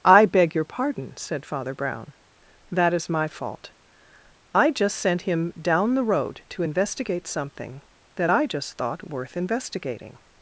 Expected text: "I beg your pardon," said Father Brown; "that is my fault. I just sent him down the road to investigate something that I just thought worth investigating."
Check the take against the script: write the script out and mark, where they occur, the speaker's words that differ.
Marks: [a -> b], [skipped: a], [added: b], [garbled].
"I beg your pardon," said Father Brown; "that is my fault. I just sent him down the road to investigate something that I just thought worth investigating."